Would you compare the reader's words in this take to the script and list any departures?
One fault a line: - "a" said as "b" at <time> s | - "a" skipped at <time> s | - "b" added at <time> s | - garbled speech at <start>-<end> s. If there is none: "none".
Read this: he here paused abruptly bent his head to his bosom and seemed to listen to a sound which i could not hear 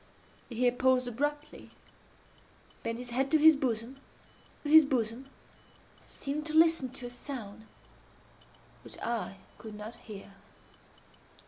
- "his bosom" added at 4.6 s